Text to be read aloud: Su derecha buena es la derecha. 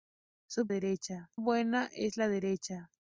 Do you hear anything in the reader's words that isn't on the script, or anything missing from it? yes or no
no